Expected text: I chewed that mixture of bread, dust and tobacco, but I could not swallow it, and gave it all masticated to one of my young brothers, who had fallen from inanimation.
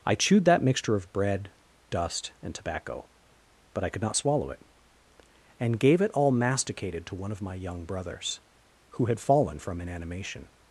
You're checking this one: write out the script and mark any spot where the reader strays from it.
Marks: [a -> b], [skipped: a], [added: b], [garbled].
I chewed that mixture of bread, dust and tobacco, but I could not swallow it, and gave it all masticated to one of my young brothers, who had fallen from inanimation.